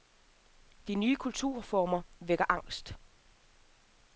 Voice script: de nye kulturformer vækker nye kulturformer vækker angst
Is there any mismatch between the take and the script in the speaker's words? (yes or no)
yes